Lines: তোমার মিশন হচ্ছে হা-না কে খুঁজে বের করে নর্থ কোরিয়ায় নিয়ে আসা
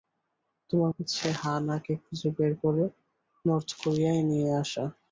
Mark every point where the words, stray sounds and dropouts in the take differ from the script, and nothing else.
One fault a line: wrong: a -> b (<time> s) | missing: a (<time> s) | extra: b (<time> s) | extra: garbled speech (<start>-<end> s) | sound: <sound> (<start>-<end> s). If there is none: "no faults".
missing: মিশন (0.9 s)